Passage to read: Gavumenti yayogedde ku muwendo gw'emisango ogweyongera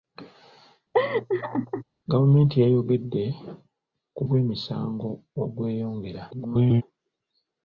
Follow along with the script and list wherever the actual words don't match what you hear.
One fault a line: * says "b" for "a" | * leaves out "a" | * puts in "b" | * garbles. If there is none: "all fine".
* leaves out "muwendo"
* garbles